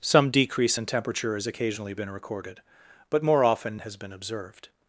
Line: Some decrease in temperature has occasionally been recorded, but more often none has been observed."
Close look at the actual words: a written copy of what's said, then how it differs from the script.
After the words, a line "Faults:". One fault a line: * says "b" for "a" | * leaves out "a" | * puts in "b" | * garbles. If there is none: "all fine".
Some decrease in temperature has occasionally been recorded, but more often has been observed."
Faults:
* leaves out "none"